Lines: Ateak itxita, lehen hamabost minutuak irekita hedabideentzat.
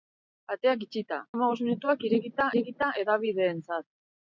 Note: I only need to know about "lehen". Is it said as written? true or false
false